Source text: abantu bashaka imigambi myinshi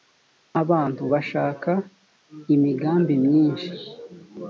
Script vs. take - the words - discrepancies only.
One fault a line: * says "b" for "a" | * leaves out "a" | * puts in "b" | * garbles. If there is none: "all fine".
all fine